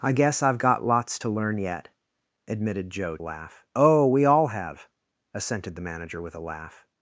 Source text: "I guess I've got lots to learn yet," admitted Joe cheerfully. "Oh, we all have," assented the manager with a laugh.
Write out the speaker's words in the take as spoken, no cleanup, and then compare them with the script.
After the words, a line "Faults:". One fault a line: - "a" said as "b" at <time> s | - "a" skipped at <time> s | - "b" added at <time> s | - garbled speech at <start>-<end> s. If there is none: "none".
"I guess I've got lots to learn yet," admitted Joe laugh. "Oh, we all have," assented the manager with a laugh.
Faults:
- "cheerfully" said as "laugh" at 3.2 s